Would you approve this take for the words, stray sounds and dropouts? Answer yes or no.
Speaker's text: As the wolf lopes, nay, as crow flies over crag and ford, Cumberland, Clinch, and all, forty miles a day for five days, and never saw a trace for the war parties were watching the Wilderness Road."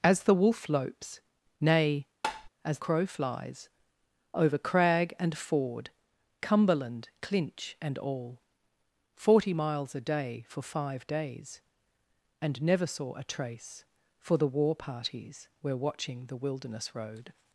no